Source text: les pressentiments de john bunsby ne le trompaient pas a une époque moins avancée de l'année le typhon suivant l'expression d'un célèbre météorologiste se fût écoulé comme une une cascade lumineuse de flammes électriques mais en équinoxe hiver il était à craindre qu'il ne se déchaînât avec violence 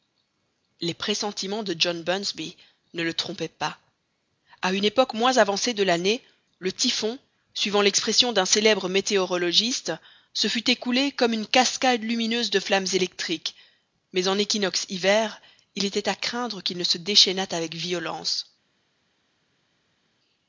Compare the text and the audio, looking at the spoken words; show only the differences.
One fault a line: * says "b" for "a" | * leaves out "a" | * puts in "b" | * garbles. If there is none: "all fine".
* leaves out "une"